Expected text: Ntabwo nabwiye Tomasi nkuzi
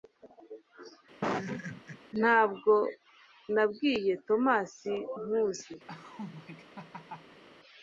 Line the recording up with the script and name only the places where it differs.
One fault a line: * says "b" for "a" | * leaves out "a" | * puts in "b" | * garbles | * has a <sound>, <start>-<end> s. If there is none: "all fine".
* has a laugh, 1.2-2.0 s
* has a laugh, 5.9-7.4 s